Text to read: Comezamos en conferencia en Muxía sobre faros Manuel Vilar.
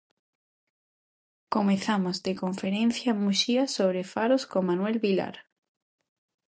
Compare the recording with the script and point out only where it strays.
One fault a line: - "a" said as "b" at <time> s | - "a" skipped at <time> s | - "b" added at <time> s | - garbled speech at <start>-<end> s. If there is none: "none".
- "en" said as "de" at 2.2 s
- "con" added at 4.5 s